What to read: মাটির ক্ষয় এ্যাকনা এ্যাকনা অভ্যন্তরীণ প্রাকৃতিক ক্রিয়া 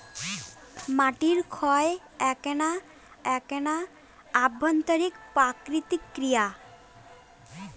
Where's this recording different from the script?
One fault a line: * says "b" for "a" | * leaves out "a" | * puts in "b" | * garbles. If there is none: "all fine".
all fine